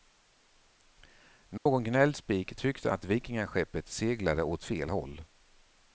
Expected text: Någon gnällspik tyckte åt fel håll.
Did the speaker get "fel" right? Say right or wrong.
right